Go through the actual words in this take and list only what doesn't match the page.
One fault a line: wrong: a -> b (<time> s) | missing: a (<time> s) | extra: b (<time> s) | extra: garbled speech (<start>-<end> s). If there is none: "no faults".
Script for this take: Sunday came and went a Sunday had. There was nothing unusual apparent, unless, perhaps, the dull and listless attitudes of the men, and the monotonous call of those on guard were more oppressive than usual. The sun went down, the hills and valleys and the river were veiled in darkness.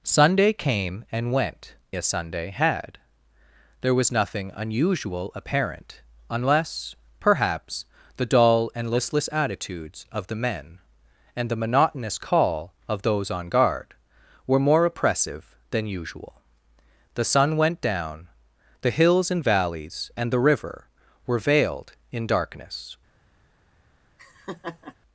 no faults